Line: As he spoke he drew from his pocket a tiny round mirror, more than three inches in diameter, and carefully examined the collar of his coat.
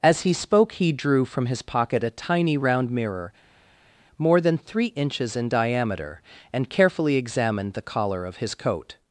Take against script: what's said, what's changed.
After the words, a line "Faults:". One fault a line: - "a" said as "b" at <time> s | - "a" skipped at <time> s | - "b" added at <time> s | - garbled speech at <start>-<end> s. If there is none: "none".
As he spoke he drew from his pocket a tiny round mirror, more than three inches in diameter, and carefully examined the collar of his coat.
Faults:
none